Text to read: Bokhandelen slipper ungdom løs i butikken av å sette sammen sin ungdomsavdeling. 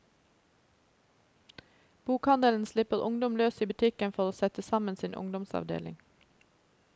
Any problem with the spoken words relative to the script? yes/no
yes